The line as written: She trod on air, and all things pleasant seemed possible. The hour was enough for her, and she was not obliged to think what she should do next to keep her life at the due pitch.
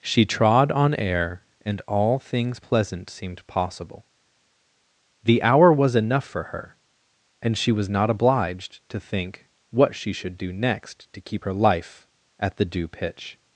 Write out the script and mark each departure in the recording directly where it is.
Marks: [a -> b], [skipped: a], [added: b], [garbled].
She trod on air, and all things pleasant seemed possible. The hour was enough for her, and she was not obliged to think what she should do next to keep her life at the due pitch.